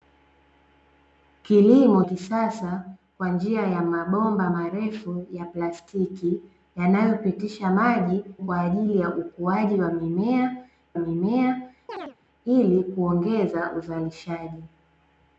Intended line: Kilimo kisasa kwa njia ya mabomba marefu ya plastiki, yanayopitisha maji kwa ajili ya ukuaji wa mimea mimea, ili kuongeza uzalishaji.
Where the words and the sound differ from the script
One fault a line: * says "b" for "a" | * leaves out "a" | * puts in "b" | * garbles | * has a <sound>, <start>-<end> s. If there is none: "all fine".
* has a chirp, 11.9-12.2 s